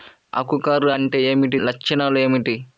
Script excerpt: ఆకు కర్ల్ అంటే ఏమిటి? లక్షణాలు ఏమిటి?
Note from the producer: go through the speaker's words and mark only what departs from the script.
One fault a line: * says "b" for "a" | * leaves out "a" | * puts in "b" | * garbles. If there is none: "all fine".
all fine